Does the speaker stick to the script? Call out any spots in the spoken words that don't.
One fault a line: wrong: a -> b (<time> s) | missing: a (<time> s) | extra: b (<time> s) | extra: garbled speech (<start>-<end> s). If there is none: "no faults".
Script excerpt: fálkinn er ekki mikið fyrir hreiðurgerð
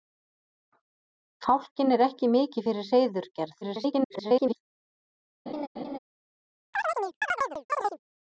extra: garbled speech (3.6-4.6 s)